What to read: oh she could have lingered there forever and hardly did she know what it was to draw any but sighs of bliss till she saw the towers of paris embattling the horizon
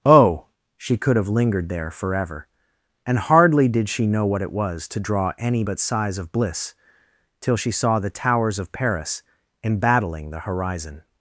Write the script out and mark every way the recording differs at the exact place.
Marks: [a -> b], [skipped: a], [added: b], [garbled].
oh she could have lingered there forever and hardly did she know what it was to draw any but sighs of bliss till she saw the towers of paris embattling the horizon